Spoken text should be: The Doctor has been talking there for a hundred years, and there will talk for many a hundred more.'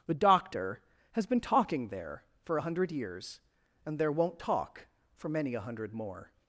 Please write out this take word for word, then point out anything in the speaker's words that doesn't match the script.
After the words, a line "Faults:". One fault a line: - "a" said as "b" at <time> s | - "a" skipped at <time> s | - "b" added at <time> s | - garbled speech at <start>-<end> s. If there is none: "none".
The Doctor has been talking there for a hundred years, and there won't talk for many a hundred more.'
Faults:
- "will" said as "won't" at 4.1 s